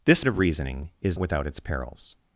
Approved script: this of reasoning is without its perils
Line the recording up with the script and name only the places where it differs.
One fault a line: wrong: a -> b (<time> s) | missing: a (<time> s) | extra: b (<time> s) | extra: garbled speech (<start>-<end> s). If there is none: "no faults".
no faults